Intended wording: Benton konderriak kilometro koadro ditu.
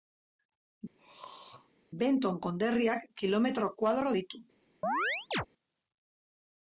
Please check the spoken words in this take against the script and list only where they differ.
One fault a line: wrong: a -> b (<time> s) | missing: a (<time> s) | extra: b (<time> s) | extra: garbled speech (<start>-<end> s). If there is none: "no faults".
no faults